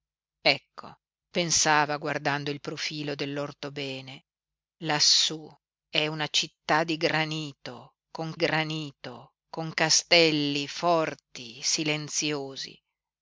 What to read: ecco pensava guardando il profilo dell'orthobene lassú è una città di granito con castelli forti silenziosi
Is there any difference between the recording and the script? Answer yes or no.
yes